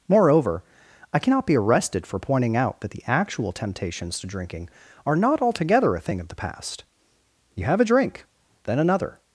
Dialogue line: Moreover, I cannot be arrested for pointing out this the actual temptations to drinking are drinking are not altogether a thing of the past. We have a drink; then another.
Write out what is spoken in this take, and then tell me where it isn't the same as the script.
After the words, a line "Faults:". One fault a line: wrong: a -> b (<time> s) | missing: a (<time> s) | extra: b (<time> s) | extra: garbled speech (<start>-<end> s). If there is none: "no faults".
Moreover, I cannot be arrested for pointing out that the actual temptations to drinking are not altogether a thing of the past. You have a drink; then another.
Faults:
wrong: this -> that (2.8 s)
missing: drinking are (5.2 s)
wrong: We -> You (7.5 s)